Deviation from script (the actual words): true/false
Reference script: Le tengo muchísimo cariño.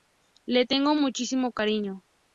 false